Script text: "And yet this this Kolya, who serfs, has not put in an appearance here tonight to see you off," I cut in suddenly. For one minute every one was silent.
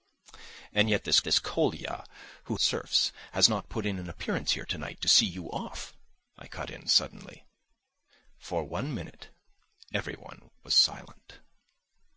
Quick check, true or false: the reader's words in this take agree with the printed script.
true